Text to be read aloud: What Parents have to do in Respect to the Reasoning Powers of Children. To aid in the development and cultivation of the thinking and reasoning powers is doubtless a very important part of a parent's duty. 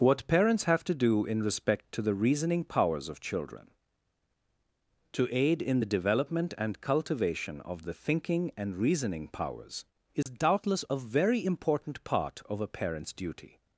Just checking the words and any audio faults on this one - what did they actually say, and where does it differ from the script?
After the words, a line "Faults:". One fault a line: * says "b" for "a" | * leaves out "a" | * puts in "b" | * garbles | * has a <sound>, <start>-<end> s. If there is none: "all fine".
What Parents have to do in Respect to the Reasoning Powers of Children. To aid in the development and cultivation of the thinking and reasoning powers is doubtless a very important part of a parent's duty.
Faults:
* has a dropout, 10.2-10.3 s